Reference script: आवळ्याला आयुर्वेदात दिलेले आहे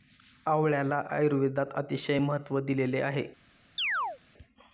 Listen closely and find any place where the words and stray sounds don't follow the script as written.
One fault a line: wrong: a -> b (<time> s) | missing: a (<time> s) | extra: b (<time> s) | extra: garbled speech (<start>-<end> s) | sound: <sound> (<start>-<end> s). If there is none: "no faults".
extra: अतिशय महत्त्व (1.8 s)
sound: chirp (3.8-4.2 s)